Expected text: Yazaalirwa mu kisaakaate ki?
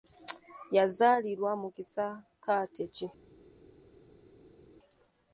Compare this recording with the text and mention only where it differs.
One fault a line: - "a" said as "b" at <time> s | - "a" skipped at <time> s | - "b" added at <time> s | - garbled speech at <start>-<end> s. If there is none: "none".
none